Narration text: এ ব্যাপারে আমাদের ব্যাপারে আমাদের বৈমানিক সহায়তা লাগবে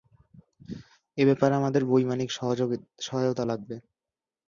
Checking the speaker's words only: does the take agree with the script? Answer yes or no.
no